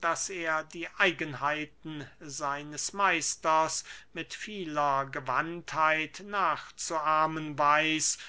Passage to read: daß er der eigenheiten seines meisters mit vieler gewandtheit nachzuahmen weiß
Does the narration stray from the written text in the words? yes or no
yes